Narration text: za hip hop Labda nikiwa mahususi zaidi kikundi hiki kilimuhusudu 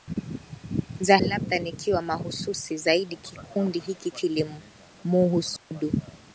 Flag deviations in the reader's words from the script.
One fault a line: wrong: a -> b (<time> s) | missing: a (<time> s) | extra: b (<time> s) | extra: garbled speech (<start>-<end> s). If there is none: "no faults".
missing: hip hop (1.2 s)